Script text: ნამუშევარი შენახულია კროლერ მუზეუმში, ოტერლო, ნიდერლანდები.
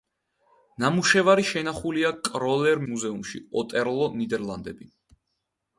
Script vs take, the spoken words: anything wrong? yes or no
no